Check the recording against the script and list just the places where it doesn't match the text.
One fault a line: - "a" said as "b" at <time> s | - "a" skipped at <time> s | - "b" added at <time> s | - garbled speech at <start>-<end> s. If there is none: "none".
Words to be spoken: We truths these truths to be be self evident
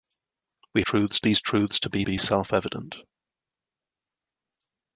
none